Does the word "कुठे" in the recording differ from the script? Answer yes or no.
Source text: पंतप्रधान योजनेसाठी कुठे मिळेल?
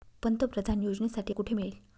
no